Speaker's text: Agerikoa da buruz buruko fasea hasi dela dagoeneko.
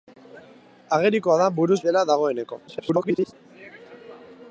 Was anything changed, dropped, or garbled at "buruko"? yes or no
yes